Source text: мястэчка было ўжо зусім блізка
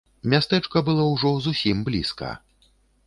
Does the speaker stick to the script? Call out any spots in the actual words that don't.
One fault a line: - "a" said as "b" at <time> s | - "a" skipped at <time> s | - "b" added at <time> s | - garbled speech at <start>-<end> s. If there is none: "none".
none